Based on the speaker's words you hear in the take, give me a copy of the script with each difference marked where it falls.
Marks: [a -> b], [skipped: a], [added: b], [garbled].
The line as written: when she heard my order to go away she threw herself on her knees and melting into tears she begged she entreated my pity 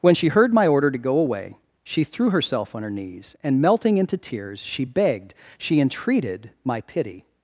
when she heard my order to go away she threw herself on her knees and melting into tears she begged she entreated my pity